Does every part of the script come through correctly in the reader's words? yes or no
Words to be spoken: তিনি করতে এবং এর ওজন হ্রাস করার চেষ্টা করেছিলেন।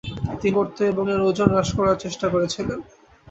yes